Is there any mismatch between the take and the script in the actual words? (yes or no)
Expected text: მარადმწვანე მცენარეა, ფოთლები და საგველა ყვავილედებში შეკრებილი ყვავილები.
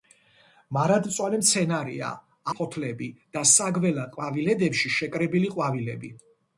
no